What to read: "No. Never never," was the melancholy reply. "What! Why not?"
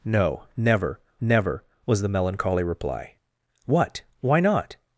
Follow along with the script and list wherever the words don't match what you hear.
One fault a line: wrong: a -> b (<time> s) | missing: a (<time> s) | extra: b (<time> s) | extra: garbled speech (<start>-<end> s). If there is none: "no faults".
no faults